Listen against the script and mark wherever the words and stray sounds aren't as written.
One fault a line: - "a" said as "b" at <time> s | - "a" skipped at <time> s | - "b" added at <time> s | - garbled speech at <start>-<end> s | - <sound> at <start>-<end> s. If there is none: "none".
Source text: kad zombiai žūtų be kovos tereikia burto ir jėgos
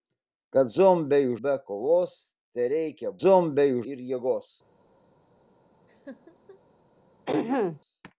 - "žūtų" skipped at 1.3 s
- "burto" said as "zombiai" at 3.2 s
- laugh at 5.9-6.6 s
- throat clearing at 7.3-7.8 s